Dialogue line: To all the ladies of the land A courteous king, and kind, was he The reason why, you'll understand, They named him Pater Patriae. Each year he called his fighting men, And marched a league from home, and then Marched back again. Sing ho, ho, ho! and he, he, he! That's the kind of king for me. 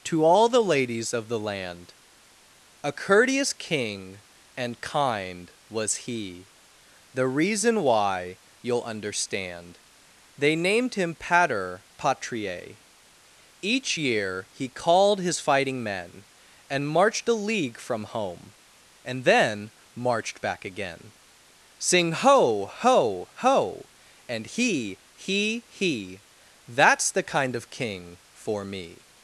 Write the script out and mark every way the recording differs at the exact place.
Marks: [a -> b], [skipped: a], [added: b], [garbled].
To all the ladies of the land A courteous king, and kind, was he The reason why, you'll understand, They named him Pater Patriae. Each year he called his fighting men, And marched a league from home, and then Marched back again. Sing ho, ho, ho! and he, he, he! That's the kind of king for me.